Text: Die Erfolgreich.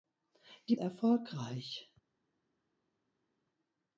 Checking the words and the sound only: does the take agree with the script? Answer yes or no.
yes